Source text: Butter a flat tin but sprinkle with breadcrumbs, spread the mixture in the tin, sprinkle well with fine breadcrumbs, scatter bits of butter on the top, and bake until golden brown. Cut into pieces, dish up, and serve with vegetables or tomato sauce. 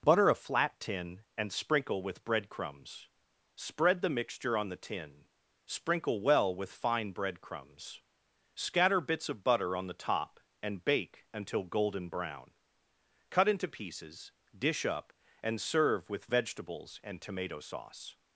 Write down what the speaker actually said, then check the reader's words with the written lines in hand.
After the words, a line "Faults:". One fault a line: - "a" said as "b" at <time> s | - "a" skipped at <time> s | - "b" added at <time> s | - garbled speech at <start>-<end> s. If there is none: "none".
Butter a flat tin and sprinkle with breadcrumbs, spread the mixture on the tin, sprinkle well with fine breadcrumbs, scatter bits of butter on the top, and bake until golden brown. Cut into pieces, dish up, and serve with vegetables and tomato sauce.
Faults:
- "but" said as "and" at 1.4 s
- "in" said as "on" at 4.6 s
- "or" said as "and" at 17.0 s